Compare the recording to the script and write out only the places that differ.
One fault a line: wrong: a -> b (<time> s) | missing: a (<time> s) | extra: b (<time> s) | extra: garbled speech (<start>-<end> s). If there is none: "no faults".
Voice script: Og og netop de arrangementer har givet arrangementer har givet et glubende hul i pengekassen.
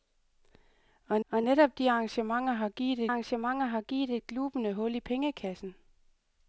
no faults